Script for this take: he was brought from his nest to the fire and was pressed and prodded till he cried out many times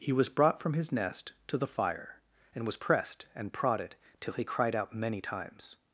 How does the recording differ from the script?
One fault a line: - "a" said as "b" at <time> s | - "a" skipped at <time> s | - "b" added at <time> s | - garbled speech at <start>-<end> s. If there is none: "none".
none